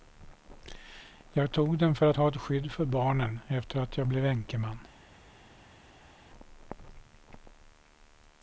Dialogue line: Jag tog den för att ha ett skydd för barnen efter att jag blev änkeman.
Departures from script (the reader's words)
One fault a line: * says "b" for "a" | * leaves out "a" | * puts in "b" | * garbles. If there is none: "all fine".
all fine